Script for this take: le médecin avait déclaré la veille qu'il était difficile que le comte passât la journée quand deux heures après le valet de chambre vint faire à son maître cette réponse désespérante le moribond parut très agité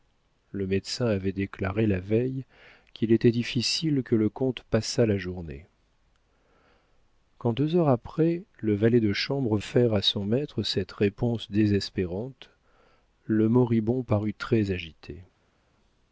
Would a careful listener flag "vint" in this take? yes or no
yes